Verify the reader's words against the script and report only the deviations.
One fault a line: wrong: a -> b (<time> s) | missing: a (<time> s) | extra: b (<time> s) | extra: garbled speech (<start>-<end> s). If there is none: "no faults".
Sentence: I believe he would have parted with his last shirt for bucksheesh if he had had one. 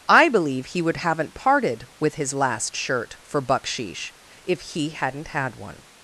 wrong: have -> haven't (1.0 s)
wrong: had -> hadn't (4.9 s)